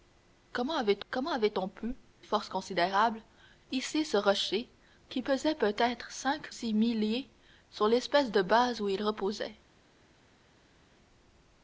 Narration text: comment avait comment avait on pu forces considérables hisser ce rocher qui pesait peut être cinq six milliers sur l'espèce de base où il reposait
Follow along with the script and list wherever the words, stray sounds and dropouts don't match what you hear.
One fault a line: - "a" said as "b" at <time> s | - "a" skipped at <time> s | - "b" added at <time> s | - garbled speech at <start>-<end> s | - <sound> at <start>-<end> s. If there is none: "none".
none